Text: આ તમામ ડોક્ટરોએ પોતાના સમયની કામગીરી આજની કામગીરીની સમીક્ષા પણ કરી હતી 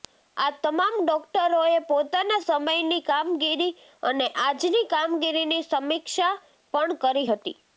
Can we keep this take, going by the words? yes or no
no